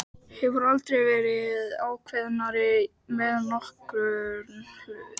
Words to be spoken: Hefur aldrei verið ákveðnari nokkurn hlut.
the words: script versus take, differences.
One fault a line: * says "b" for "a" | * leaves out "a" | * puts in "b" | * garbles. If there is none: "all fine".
* puts in "með"